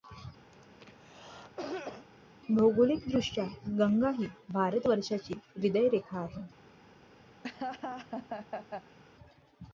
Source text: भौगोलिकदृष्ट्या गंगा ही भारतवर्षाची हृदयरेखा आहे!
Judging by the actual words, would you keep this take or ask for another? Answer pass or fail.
pass